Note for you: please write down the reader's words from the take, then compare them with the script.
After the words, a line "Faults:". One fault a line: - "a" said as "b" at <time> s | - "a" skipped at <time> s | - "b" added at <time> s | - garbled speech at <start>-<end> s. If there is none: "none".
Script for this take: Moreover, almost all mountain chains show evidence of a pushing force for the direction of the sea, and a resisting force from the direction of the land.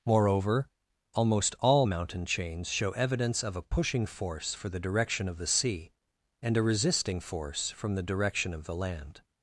Moreover, almost all mountain chains show evidence of a pushing force for the direction of the sea, and a resisting force from the direction of the land.
Faults:
none